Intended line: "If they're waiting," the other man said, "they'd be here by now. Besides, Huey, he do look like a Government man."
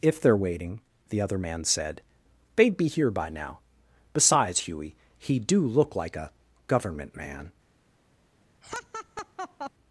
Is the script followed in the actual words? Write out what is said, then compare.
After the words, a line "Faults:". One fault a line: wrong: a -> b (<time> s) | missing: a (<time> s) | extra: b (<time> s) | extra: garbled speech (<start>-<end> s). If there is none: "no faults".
"If they're waiting," the other man said, "they'd be here by now. Besides, Huey, he do look like a Government man."
Faults:
no faults